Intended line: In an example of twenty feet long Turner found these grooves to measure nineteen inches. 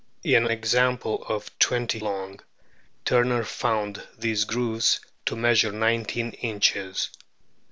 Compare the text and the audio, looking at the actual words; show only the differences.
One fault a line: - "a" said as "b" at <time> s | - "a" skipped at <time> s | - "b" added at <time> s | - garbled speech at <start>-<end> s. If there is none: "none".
- "an" skipped at 0.5 s
- "feet" skipped at 2.0 s